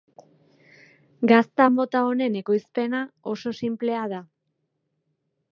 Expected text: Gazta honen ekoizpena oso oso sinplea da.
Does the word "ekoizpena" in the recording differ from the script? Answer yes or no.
no